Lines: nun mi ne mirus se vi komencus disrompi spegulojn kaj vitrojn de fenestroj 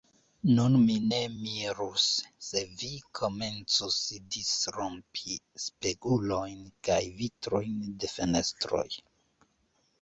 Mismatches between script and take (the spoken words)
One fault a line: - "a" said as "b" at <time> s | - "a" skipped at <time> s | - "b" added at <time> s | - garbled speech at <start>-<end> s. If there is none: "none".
none